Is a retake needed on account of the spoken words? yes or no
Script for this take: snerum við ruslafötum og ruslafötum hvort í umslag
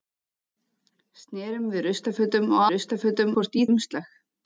no